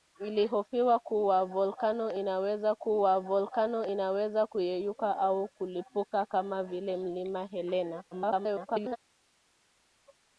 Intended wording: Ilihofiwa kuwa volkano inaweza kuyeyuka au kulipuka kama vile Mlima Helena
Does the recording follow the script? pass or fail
fail